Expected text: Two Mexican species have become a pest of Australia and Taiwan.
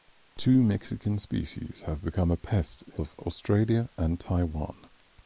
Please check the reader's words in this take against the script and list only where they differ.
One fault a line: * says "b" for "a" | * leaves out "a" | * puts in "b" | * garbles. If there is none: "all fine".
all fine